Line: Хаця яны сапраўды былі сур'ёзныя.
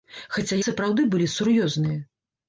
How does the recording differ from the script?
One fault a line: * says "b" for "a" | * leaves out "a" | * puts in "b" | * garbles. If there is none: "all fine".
* leaves out "яны"